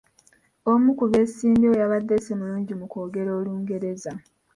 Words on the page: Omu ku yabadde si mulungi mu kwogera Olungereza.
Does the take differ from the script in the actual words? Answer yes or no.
yes